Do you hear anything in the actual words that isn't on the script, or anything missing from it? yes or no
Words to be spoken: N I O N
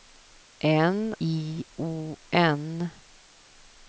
no